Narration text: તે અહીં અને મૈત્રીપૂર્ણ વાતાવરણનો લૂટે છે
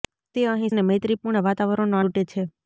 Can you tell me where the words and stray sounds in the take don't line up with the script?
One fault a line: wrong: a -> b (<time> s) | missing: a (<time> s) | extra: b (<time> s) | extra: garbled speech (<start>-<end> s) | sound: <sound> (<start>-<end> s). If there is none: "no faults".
no faults